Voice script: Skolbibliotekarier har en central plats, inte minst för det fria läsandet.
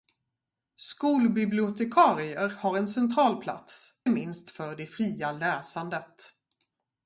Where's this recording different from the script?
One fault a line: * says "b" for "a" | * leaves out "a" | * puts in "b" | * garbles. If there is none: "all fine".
* leaves out "inte"